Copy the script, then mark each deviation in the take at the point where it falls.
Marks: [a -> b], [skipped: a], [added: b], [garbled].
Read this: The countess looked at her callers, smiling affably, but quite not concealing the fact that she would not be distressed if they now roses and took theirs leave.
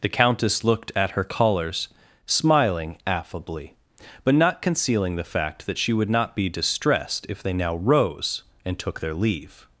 The countess looked at her callers, smiling affably, but [skipped: quite] not concealing the fact that she would not be distressed if they now [roses -> rose] and took [theirs -> their] leave.